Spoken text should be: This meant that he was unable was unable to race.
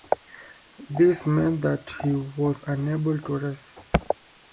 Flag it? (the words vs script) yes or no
yes